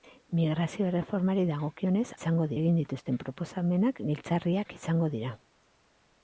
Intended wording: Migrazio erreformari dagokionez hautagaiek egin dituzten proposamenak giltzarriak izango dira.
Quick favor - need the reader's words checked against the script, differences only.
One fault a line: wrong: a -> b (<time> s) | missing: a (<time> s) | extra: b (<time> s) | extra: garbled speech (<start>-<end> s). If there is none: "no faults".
wrong: hautagaiek -> izango (2.2 s)